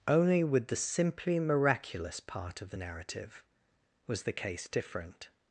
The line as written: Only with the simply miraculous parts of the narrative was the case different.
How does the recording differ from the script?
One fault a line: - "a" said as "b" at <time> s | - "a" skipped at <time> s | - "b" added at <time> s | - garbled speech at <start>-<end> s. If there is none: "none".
- "parts" said as "part" at 2.2 s